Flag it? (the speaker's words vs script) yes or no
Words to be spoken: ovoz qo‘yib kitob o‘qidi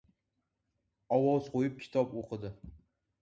no